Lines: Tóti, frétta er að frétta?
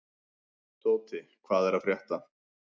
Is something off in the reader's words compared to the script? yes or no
yes